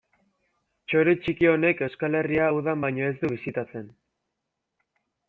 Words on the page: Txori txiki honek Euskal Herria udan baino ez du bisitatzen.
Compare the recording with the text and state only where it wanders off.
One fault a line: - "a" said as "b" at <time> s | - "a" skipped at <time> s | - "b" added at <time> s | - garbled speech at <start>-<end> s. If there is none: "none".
none